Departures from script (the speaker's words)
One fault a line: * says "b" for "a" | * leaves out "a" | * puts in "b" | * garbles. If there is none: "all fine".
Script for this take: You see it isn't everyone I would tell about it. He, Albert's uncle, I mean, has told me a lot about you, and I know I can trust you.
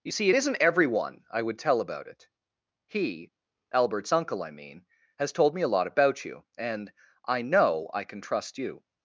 all fine